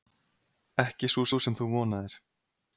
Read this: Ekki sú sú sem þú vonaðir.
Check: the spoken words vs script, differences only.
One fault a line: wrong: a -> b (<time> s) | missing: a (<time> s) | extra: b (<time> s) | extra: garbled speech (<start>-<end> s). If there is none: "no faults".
no faults